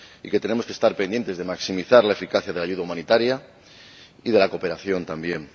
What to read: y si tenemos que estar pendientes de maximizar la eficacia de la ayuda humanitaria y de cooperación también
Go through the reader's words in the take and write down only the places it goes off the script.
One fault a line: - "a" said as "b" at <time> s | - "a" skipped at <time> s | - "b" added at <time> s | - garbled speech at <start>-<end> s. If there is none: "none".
- "si" said as "que" at 0.3 s
- "la" added at 4.4 s